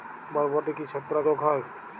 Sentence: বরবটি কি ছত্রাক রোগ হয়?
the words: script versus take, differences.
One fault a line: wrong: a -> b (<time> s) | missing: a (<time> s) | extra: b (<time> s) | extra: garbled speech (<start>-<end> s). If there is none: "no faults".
no faults